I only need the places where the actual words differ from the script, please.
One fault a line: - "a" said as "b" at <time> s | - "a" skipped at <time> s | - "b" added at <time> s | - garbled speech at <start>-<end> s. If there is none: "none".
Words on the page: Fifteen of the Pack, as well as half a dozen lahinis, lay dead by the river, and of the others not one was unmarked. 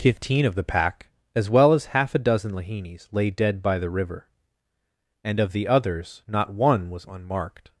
none